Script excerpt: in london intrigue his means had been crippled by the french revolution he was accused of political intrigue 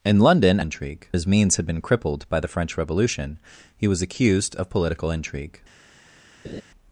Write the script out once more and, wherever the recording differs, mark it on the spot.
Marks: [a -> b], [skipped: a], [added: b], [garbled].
in london intrigue his means had been crippled by the french revolution he was accused of political intrigue